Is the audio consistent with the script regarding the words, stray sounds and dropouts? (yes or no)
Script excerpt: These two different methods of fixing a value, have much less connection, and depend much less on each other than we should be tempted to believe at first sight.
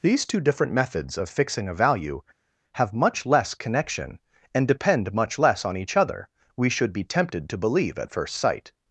no